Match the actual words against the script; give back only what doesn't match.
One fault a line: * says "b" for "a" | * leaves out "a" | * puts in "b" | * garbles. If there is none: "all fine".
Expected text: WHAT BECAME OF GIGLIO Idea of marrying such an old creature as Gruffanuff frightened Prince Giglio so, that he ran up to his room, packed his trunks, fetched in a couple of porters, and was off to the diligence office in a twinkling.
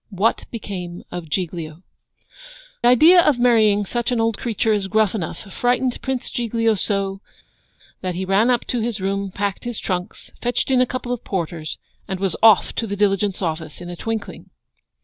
all fine